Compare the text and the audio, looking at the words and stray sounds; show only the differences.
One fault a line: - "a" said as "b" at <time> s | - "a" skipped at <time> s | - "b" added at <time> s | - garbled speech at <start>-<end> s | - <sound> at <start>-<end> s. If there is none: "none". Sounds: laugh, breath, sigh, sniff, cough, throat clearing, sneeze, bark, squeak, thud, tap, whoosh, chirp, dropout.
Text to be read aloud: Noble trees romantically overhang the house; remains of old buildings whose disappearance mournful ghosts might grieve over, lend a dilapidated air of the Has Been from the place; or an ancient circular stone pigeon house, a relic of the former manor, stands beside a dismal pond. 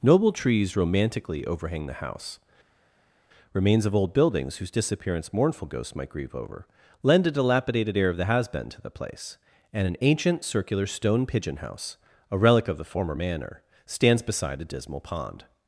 - "from" said as "to" at 8.7 s
- "or" said as "and" at 9.7 s